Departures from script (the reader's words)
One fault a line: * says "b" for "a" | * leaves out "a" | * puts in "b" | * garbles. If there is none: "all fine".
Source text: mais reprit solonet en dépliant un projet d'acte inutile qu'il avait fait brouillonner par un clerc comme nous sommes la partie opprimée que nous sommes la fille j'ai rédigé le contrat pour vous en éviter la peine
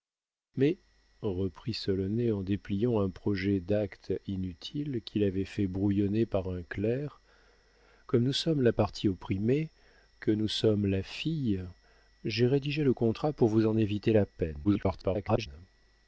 * garbles